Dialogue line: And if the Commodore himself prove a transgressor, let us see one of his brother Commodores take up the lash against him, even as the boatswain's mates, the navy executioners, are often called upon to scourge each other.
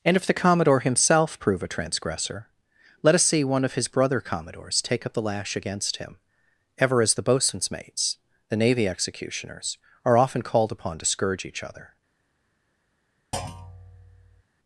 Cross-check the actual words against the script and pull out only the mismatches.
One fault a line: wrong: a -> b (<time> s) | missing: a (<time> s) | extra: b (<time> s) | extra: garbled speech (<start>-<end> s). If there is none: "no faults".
wrong: even -> ever (6.8 s)